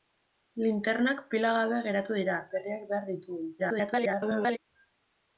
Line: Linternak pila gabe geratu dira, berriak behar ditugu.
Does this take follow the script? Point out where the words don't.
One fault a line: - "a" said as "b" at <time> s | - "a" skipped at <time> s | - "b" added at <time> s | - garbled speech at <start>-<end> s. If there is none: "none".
- garbled speech at 3.6-4.6 s